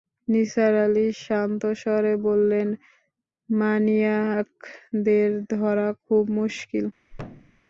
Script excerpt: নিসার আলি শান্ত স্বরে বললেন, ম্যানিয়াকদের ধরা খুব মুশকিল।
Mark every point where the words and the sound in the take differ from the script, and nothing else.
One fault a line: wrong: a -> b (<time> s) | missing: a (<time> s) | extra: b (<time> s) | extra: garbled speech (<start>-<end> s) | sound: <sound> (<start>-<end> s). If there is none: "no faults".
sound: thud (7.1-7.6 s)